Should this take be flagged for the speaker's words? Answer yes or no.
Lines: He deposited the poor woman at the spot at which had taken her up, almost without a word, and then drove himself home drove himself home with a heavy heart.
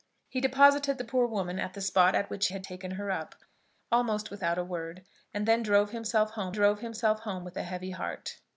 no